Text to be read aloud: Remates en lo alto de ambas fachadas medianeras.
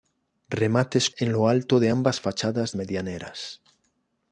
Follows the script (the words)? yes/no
yes